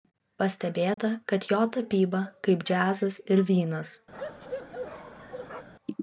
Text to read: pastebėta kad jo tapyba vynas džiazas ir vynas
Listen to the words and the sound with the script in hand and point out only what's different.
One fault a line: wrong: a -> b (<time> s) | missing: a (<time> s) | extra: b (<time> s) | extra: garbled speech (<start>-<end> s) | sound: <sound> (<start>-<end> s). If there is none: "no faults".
sound: dropout (0.9-1.0 s)
wrong: vynas -> kaip (2.5 s)
sound: bark (4.1-5.7 s)